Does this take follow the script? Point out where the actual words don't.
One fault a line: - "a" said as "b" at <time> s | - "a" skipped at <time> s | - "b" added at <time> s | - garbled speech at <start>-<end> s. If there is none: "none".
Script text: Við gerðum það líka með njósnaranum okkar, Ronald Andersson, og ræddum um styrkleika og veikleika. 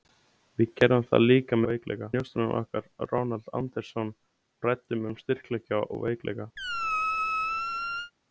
- "með" said as "veikleika" at 1.7 s
- "og" skipped at 4.1 s